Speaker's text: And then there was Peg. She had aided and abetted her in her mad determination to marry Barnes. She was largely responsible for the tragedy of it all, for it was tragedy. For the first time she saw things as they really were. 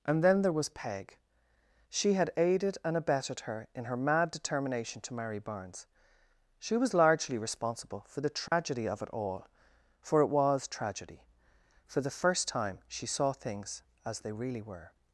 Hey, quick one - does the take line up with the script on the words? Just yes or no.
yes